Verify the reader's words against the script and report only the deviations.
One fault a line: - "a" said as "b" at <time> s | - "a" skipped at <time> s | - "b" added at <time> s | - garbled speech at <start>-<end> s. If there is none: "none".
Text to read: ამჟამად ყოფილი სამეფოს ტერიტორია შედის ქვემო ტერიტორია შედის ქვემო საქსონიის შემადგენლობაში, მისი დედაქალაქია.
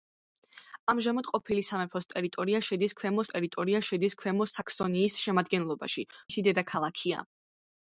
none